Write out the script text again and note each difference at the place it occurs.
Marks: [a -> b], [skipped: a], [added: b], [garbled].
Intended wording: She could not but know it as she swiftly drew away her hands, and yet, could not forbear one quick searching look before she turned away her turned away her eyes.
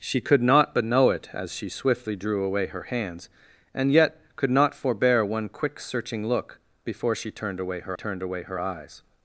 She could not but know it as she swiftly drew away her hands, and yet, could not forbear one quick searching look before she turned away her turned away her eyes.